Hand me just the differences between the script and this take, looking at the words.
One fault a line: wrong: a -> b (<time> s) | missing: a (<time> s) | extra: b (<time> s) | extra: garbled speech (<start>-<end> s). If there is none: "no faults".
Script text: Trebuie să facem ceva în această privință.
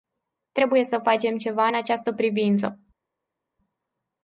no faults